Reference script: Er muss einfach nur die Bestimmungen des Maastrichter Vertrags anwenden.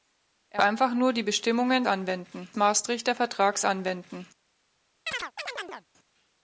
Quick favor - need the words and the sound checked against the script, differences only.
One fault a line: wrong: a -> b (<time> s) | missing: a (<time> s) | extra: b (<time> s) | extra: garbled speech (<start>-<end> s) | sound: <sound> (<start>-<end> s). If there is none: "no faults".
missing: muss (0.6 s)
wrong: des -> anwenden (1.9 s)
sound: chirp (5.1-5.9 s)